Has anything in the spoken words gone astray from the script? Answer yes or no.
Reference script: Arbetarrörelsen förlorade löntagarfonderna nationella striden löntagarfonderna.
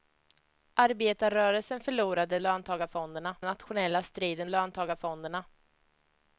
no